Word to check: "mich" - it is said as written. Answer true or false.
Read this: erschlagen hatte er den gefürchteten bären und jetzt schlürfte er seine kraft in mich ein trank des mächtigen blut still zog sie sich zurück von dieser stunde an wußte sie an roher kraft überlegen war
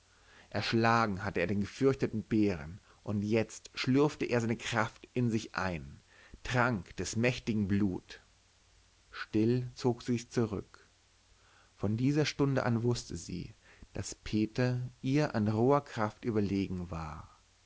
false